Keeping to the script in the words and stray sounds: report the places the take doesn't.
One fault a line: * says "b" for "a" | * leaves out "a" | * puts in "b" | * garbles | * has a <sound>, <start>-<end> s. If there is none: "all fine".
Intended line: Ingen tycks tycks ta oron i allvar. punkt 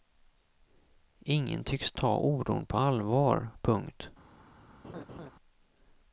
* leaves out "tycks"
* says "på" for "i"
* has a laugh, 4.8-5.3 s